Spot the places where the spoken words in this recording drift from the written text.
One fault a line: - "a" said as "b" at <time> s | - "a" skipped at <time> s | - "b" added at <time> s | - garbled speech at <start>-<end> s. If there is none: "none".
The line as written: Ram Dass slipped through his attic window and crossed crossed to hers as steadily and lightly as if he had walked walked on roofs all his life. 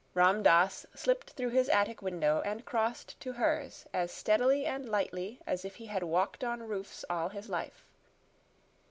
- "crossed" skipped at 3.2 s
- "walked" skipped at 6.4 s